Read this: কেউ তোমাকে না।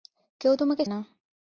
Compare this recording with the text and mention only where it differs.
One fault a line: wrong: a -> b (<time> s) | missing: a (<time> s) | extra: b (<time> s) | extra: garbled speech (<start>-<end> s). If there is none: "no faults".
no faults